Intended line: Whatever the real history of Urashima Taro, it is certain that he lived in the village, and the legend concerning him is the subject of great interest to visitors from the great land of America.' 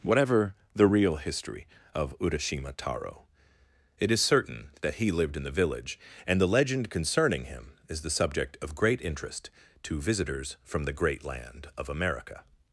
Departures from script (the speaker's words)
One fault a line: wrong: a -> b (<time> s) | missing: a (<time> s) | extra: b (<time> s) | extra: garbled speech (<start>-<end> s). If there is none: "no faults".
no faults